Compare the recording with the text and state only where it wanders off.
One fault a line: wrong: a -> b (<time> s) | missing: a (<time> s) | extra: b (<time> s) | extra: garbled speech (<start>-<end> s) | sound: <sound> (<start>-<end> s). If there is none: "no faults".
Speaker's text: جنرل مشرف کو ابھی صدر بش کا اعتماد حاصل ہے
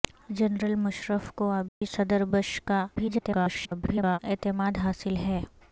sound: dropout (1.7-1.8 s)
extra: garbled speech (3.0-4.2 s)